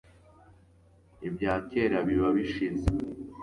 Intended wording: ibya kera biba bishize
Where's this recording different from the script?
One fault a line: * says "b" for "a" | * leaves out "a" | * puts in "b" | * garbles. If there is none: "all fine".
all fine